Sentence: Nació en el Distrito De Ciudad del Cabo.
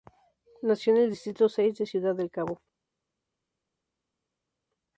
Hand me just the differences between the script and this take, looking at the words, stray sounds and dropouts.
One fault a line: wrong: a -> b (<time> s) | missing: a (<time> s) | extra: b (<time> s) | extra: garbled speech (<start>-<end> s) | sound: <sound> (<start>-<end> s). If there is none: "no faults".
extra: Seis (1.5 s)